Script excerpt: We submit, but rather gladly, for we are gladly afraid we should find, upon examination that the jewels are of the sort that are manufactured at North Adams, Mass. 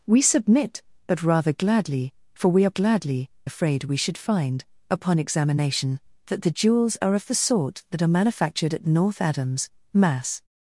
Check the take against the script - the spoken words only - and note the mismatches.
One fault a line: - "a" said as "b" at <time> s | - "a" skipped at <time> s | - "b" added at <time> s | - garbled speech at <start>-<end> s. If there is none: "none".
none